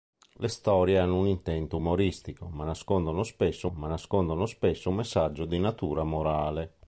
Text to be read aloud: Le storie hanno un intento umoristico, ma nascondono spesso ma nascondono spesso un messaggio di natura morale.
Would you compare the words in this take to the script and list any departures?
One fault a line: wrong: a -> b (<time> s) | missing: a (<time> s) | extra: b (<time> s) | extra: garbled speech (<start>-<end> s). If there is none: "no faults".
no faults